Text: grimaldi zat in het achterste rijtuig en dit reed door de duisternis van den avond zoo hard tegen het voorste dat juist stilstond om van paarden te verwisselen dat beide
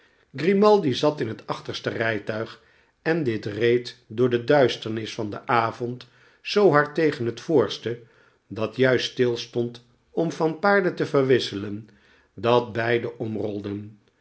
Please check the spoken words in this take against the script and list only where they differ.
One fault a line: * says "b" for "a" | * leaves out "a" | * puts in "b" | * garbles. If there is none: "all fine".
all fine